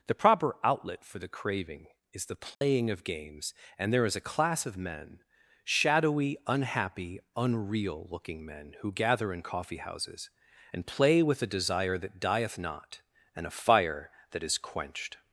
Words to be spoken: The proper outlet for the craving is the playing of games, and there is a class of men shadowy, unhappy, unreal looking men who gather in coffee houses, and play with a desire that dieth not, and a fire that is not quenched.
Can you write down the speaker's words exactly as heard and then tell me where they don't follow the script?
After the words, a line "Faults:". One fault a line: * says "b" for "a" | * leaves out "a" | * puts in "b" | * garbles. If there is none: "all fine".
The proper outlet for the craving is the playing of games, and there is a class of men shadowy, unhappy, unreal looking men who gather in coffee houses, and play with a desire that dieth not, and a fire that is quenched.
Faults:
* leaves out "not"